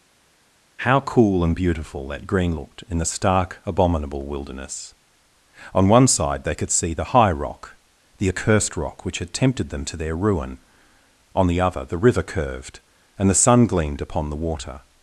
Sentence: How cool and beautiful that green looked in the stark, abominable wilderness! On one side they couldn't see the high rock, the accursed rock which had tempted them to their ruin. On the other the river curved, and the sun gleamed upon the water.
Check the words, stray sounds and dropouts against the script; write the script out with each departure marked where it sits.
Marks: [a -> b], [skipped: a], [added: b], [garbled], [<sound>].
How cool and beautiful that green looked in the stark, abominable wilderness! On one side they [couldn't -> could] see the high rock, the accursed rock which had tempted them to their ruin. On the other the river curved, and the sun gleamed upon the water.